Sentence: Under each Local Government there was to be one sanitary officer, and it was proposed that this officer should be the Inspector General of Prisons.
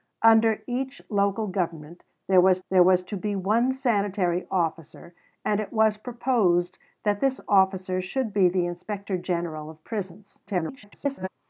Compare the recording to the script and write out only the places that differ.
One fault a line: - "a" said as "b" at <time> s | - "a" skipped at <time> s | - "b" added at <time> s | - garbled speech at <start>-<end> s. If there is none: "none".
- "there was" added at 2.7 s
- garbled speech at 10.5-11.3 s